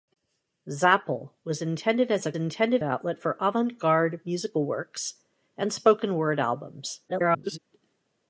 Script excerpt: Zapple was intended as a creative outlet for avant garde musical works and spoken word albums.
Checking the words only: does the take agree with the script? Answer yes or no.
no